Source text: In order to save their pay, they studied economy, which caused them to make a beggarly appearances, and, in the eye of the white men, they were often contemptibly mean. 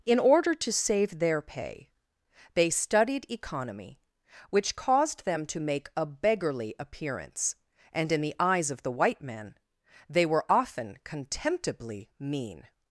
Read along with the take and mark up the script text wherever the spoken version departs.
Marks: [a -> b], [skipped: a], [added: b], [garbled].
In order to save their pay, they studied economy, which caused them to make a beggarly [appearances, -> appearance] and, in the [eye -> eyes] of the white men, they were often contemptibly mean.